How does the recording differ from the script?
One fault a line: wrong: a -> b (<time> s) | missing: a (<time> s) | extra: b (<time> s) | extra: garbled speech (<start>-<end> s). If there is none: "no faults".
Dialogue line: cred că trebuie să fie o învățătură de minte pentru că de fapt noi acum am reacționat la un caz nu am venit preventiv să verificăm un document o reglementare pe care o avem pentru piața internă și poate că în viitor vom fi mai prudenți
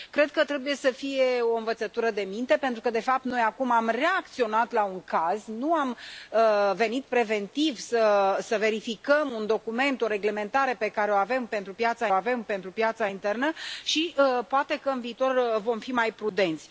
extra: avem pentru piața (12.1 s)